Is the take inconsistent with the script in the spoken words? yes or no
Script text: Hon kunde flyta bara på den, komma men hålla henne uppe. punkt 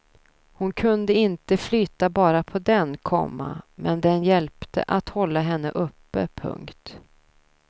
yes